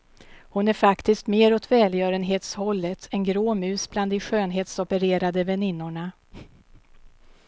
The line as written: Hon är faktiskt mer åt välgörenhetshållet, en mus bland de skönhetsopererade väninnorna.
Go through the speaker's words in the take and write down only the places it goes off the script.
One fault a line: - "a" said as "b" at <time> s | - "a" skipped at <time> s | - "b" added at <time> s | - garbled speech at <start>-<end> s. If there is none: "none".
- "grå" added at 3.2 s